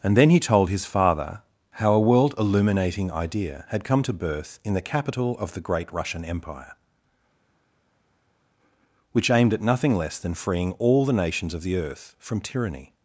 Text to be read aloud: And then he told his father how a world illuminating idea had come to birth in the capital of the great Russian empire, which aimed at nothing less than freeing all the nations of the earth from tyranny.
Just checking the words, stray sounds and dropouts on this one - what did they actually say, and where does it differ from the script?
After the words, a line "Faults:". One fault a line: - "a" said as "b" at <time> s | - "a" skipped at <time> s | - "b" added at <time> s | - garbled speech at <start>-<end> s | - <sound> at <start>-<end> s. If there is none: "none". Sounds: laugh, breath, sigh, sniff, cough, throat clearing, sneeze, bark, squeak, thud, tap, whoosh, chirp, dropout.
And then he told his father how a world illuminating idea had come to birth in the capital of the great Russian empire, which aimed at nothing less than freeing all the nations of the earth from tyranny.
Faults:
none